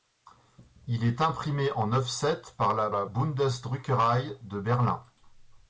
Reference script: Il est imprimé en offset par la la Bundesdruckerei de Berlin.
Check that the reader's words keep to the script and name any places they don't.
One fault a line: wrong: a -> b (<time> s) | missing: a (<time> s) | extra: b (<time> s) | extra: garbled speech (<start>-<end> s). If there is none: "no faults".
no faults